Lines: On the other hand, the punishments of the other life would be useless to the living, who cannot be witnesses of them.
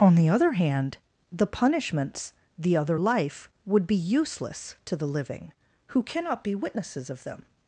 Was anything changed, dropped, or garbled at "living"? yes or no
no